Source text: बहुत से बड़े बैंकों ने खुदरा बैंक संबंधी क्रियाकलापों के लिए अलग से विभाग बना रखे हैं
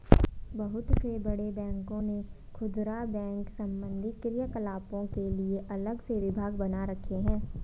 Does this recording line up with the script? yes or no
yes